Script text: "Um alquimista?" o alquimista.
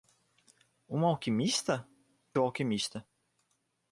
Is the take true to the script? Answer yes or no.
yes